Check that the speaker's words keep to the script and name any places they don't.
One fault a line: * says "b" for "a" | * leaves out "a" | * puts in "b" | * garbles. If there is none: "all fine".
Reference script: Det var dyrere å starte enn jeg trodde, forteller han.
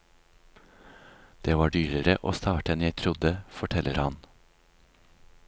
all fine